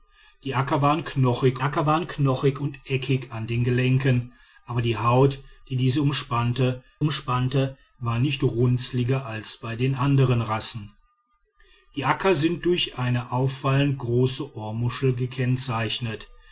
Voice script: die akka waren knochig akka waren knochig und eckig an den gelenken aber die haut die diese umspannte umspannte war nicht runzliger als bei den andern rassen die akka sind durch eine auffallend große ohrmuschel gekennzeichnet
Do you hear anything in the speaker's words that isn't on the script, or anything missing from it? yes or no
no